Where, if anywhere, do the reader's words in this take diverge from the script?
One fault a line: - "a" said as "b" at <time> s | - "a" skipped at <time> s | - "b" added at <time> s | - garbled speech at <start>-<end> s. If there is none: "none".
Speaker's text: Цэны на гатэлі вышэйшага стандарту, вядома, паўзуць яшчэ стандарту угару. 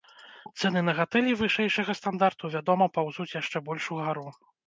- "стандарту" said as "больш" at 3.7 s